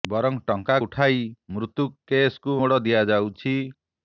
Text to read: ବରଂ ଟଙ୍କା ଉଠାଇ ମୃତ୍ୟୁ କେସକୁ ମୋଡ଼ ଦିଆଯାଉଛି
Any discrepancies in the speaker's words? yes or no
no